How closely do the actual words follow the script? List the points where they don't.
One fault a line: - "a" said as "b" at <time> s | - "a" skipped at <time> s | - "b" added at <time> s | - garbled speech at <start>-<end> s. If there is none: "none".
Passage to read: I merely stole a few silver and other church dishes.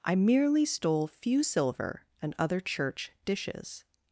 - "a" skipped at 1.1 s